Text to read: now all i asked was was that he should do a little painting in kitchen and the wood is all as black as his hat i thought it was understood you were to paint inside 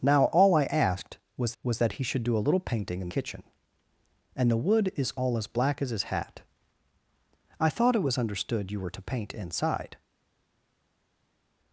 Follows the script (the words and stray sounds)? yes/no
yes